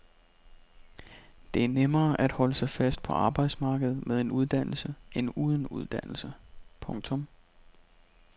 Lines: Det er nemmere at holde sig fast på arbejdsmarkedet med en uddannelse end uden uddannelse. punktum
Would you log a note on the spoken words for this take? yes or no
no